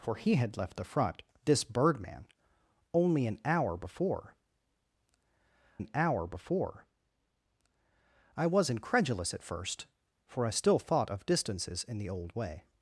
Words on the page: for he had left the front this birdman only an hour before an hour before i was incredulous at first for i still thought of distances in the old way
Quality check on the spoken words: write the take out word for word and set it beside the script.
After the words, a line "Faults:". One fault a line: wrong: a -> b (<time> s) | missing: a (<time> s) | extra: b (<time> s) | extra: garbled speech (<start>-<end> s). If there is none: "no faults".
for he had left the front this birdman only an hour before an hour before i was incredulous at first for i still thought of distances in the old way
Faults:
no faults